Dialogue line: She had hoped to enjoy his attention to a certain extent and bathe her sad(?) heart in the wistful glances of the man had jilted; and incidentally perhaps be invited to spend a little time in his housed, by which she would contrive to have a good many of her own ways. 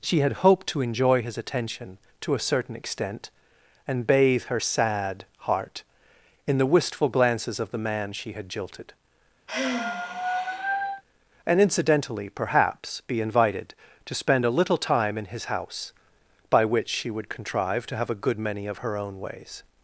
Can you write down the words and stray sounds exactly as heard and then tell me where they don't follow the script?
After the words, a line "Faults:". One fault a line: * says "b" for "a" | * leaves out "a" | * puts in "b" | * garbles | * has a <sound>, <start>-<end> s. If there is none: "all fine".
She had hoped to enjoy his attention to a certain extent and bathe her sad(?) heart in the wistful glances of the man she had jilted; and incidentally perhaps be invited to spend a little time in his house, by which she would contrive to have a good many of her own ways.
Faults:
* puts in "she"
* has a sigh, 9.5-11.0 s
* says "house" for "housed"